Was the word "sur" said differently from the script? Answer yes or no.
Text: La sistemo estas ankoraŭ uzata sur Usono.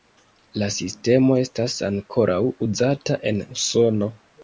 yes